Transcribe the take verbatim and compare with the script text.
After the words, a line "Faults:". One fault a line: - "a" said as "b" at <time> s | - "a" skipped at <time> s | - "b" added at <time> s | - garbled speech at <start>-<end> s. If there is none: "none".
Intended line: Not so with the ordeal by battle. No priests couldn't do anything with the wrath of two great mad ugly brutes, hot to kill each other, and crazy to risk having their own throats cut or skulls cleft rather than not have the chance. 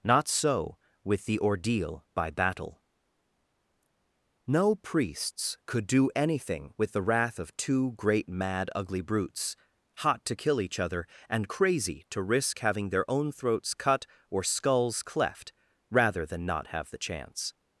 Not so with the ordeal by battle. No priests could do anything with the wrath of two great mad ugly brutes, hot to kill each other, and crazy to risk having their own throats cut or skulls cleft rather than not have the chance.
Faults:
- "couldn't" said as "could" at 5.7 s